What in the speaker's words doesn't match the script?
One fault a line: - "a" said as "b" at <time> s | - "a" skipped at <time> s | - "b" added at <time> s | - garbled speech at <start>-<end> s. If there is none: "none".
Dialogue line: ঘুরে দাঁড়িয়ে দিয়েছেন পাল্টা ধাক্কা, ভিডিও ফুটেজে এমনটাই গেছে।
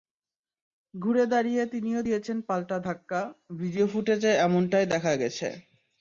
- "তিনিও" added at 1.6 s
- "দেখা" added at 4.9 s